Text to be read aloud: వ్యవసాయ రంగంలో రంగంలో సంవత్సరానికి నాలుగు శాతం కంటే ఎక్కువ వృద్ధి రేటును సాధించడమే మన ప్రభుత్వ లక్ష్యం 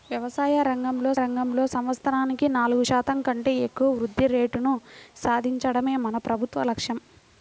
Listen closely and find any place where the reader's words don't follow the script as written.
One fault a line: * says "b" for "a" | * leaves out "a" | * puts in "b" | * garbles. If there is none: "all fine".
all fine